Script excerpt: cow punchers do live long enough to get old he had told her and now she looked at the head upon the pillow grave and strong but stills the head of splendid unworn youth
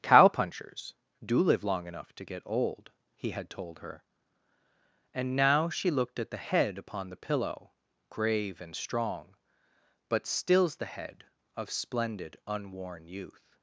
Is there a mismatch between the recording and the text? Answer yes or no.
no